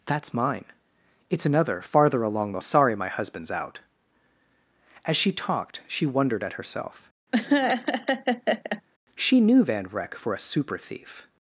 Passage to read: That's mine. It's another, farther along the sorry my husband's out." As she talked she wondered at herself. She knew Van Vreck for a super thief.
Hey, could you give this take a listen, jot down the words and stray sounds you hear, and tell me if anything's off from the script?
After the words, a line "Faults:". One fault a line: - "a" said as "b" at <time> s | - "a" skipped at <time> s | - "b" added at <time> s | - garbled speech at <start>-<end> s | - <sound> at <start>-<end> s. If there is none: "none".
That's mine. It's another, farther along the sorry my husband's out." As she talked she wondered at herself. She knew Van Vreck for a super thief.
Faults:
- laugh at 7.3-8.8 s